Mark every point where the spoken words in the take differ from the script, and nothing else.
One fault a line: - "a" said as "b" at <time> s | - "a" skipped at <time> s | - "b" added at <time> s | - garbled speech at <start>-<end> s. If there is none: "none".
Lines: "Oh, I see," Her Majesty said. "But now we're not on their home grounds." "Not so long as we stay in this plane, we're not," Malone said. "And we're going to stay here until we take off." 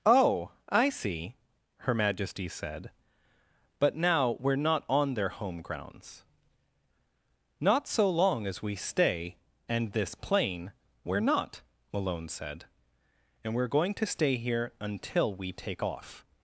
- "in" said as "and" at 9.7 s